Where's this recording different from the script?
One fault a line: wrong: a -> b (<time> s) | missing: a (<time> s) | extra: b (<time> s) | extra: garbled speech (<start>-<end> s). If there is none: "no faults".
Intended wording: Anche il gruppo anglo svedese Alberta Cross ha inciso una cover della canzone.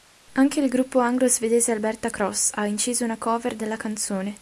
no faults